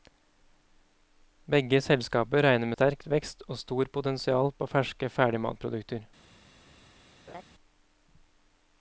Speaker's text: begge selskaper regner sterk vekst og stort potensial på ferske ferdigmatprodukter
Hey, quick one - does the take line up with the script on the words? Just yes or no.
yes